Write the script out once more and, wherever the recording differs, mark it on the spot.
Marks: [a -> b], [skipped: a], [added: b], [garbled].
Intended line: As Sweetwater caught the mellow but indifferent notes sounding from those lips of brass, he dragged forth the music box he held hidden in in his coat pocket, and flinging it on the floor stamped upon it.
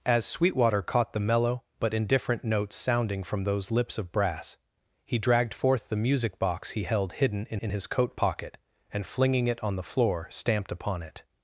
As Sweetwater caught the mellow but indifferent notes sounding from those lips of brass, he dragged forth the music box he held hidden in in his coat pocket, and flinging it on the floor stamped upon it.